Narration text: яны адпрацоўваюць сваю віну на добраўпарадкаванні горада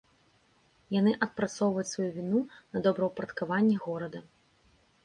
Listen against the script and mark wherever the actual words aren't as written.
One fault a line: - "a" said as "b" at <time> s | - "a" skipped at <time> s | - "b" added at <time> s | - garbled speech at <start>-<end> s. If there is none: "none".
none